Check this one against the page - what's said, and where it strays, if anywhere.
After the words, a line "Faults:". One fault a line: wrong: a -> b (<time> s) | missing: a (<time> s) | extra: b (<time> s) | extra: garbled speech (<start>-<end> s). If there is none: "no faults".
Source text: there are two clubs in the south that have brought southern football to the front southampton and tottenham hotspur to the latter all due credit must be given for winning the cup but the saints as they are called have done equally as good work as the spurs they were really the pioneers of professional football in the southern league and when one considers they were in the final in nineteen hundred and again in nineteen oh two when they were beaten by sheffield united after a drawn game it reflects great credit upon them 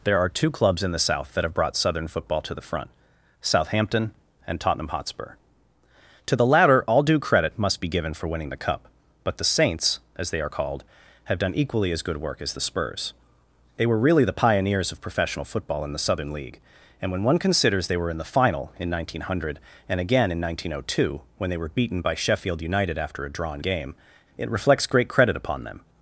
there are two clubs in the south that have brought southern football to the front southampton and tottenham hotspur to the latter all due credit must be given for winning the cup but the saints as they are called have done equally as good work as the spurs they were really the pioneers of professional football in the southern league and when one considers they were in the final in nineteen hundred and again in nineteen oh two when they were beaten by sheffield united after a drawn game it reflects great credit upon them
Faults:
no faults